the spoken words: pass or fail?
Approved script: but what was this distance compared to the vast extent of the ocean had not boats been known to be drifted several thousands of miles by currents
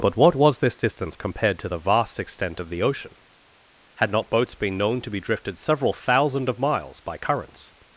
fail